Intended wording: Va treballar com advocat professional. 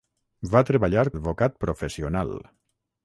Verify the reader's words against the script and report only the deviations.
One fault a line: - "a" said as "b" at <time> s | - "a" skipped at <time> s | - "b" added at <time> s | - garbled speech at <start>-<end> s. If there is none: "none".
- "com" skipped at 1.0 s